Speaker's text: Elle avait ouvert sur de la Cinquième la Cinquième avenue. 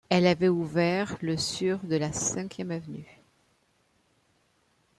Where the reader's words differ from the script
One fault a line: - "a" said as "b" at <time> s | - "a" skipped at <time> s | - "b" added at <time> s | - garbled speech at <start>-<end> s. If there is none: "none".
- "le" added at 1.2 s
- "la Cinquième" skipped at 2.7 s